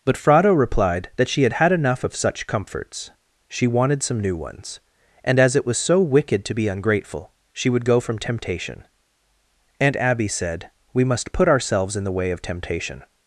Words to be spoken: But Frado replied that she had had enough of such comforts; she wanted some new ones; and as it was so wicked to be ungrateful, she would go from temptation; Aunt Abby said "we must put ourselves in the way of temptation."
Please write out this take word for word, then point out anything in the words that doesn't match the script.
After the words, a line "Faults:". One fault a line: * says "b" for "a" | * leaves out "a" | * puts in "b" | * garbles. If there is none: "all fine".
But Frado replied that she had had enough of such comforts; she wanted some new ones; and as it was so wicked to be ungrateful, she would go from temptation; Aunt Abby said "we must put ourselves in the way of temptation."
Faults:
all fine